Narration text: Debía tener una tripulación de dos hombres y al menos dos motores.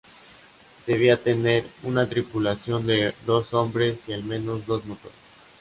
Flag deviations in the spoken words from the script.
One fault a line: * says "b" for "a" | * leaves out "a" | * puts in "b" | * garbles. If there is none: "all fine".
all fine